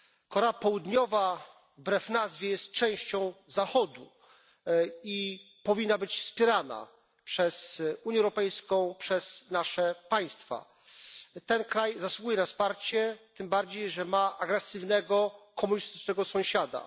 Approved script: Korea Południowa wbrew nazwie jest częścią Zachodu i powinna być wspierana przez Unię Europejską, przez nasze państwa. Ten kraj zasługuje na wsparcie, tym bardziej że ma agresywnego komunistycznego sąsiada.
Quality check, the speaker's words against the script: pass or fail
pass